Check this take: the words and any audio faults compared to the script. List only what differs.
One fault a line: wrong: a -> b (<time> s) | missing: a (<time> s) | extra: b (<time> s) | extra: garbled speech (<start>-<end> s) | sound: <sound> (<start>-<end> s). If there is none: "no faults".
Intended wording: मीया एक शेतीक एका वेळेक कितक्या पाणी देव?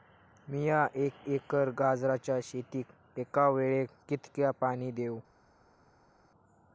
extra: एकर गाजराच्या (1.3 s)